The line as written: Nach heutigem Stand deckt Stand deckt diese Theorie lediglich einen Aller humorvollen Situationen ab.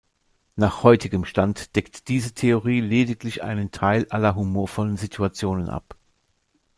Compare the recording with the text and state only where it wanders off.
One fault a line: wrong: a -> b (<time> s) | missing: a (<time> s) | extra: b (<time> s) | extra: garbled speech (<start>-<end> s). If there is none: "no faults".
missing: Stand deckt (2.1 s)
extra: Teil (3.7 s)